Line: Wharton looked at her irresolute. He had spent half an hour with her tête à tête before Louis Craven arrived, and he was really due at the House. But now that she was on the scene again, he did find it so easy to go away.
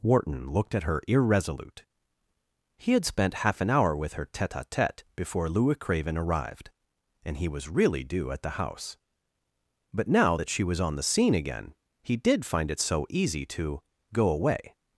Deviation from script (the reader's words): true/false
false